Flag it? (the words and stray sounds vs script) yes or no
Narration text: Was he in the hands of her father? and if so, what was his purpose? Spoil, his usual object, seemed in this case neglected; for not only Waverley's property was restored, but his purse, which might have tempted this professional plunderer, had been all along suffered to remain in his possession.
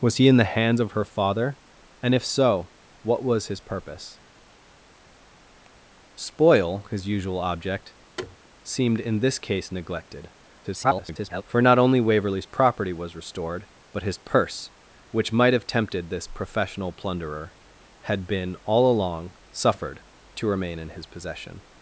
yes